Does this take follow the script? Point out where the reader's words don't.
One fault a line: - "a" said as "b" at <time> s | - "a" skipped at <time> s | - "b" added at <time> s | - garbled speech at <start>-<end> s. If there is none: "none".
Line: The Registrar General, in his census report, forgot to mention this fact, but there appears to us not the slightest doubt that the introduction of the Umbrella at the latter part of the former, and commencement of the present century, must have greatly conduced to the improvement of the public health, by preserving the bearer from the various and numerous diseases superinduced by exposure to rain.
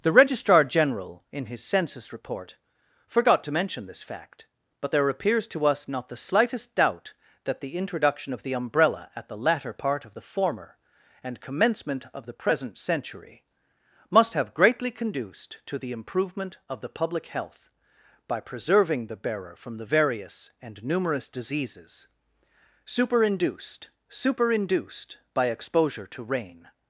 - "superinduced" added at 24.1 s